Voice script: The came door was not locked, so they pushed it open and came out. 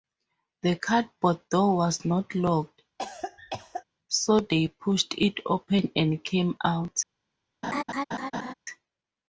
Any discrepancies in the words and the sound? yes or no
yes